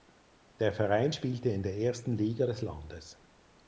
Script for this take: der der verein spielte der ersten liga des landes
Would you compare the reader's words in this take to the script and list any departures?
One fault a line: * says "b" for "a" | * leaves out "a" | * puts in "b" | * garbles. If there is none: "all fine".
* leaves out "der"
* puts in "in"